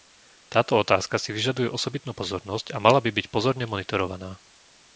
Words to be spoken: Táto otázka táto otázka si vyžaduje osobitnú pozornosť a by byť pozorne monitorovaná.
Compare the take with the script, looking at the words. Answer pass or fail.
fail